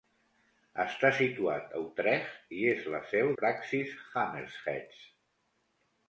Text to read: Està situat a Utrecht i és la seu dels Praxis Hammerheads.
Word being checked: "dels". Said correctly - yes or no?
no